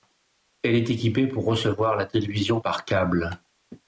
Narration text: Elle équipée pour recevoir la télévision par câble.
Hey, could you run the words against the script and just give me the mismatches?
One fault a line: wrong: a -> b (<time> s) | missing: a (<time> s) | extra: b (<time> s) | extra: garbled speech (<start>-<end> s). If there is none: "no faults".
extra: est (0.7 s)